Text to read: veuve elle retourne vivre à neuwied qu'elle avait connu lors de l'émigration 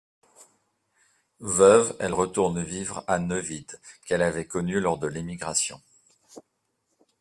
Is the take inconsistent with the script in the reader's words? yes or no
no